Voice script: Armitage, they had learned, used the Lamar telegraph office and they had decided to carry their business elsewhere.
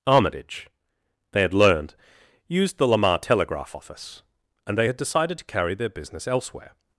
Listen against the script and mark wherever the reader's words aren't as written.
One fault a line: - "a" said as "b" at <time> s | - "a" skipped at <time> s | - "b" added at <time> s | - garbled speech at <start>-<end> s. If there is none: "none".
none